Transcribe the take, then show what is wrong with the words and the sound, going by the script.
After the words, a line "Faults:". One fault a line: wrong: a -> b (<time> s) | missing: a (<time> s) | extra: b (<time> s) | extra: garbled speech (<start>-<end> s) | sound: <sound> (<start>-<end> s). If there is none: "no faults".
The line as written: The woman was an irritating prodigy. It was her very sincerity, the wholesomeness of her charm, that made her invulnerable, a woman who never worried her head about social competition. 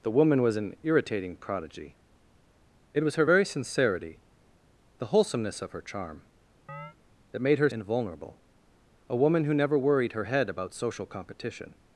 The woman was an irritating prodigy. It was her very sincerity, the wholesomeness of her charm, that made her invulnerable, a woman who never worried her head about social competition.
Faults:
sound: chirp (6.7-7.0 s)